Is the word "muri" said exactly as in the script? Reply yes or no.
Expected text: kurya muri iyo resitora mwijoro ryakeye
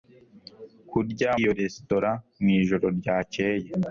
no